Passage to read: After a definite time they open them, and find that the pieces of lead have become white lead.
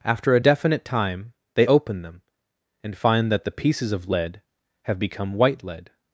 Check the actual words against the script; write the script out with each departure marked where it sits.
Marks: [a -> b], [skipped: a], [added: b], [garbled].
After a definite time they open them, and find that the pieces of lead have become white lead.